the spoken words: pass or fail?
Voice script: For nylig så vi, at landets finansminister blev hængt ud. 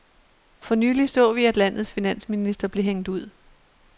pass